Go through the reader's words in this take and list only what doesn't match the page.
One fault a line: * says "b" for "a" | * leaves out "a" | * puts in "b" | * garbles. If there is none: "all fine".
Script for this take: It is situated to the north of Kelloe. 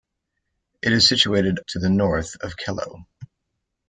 all fine